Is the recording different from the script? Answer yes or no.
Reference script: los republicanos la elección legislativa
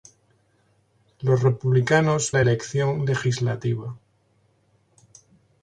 no